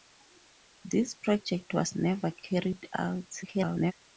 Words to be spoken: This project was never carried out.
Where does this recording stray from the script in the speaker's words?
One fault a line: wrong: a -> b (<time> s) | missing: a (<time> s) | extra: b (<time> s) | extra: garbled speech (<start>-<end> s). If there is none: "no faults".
extra: garbled speech (3.4-3.9 s)